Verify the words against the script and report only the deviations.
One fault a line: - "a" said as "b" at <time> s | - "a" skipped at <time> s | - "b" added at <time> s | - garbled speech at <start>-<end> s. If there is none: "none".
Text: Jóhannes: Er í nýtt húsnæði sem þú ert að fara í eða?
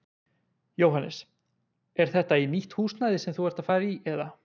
- "þetta" added at 2.1 s